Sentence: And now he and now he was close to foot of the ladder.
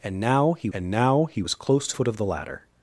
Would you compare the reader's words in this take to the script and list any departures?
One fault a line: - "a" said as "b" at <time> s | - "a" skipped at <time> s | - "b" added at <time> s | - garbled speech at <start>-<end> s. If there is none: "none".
none